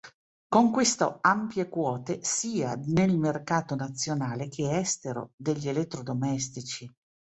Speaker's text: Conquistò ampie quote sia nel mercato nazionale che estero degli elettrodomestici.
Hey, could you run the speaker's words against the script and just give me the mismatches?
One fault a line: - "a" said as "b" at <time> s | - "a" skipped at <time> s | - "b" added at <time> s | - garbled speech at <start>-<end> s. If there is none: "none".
none